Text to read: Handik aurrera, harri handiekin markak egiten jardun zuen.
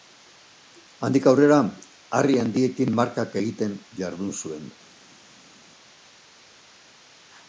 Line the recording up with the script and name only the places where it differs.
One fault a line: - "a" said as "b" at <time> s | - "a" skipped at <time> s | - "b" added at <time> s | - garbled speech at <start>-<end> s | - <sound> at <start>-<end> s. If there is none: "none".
none